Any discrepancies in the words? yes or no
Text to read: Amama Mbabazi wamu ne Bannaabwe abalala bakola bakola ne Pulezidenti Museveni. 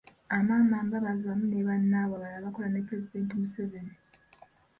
yes